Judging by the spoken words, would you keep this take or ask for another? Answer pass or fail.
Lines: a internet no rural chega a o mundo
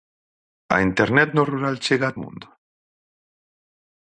pass